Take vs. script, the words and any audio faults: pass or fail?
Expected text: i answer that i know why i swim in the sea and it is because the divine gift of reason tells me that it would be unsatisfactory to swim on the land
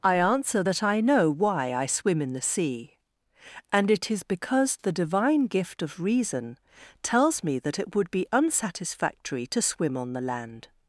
pass